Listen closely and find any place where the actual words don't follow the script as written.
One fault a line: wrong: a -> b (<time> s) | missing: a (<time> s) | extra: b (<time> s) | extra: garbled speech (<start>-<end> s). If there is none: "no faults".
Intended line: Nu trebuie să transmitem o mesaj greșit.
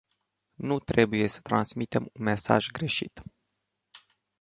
wrong: o -> un (2.1 s)